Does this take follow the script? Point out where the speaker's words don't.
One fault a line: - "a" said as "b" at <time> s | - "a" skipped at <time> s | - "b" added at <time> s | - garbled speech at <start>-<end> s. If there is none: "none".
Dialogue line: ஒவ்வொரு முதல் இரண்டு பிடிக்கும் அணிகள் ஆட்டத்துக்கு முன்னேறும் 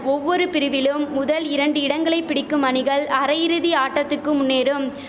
- "பிரிவிலும்" added at 0.5 s
- "இடங்களை" added at 1.8 s
- "அரையிறுதி" added at 3.2 s